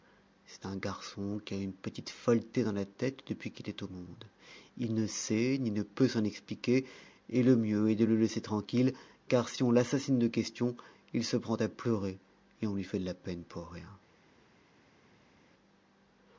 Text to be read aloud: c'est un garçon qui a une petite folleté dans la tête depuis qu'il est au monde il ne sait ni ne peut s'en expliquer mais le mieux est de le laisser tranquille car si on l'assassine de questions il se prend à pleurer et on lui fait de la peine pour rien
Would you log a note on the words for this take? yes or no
yes